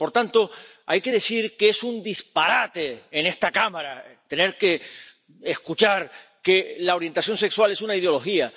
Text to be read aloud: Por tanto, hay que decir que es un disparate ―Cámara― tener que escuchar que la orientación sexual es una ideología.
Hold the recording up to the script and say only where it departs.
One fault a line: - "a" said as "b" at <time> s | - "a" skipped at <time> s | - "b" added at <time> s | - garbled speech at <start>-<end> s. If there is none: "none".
- "en esta" added at 3.1 s